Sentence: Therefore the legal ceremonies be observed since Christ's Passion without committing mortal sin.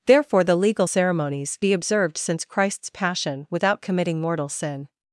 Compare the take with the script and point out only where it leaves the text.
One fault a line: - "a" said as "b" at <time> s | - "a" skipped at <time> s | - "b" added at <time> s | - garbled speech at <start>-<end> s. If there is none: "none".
none